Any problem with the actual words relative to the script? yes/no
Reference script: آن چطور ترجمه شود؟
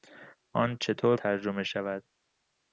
no